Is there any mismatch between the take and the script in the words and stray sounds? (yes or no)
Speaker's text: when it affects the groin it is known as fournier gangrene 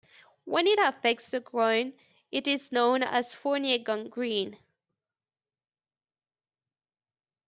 no